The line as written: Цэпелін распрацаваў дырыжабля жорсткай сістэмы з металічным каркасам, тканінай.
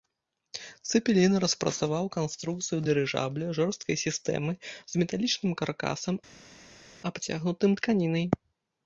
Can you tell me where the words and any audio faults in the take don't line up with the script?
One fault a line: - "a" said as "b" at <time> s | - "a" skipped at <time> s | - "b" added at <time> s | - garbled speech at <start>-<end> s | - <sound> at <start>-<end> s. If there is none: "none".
- "канструкцыю" added at 2.1 s
- "абцягнутым" added at 7.1 s